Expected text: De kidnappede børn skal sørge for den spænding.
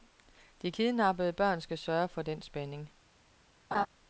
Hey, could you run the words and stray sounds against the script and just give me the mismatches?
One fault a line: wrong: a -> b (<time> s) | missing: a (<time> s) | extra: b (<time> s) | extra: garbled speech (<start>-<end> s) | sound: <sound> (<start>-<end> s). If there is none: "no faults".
sound: laugh (3.7-3.9 s)